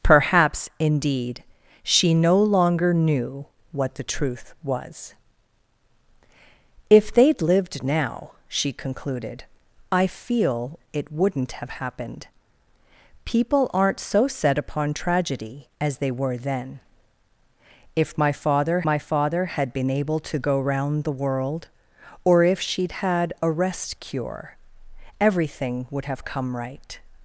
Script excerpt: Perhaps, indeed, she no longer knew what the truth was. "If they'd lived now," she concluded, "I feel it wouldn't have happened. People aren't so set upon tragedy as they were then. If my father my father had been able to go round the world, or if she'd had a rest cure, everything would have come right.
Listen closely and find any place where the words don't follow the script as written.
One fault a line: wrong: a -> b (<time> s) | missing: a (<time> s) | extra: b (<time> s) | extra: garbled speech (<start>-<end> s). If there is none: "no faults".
no faults